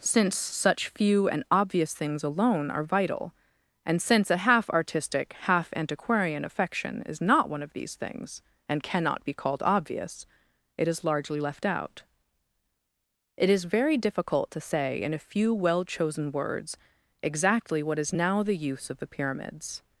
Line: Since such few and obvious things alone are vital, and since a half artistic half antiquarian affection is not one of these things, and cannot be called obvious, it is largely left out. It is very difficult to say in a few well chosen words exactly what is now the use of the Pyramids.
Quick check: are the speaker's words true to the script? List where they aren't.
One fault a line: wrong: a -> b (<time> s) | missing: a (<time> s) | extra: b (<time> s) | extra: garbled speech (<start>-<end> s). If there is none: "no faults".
no faults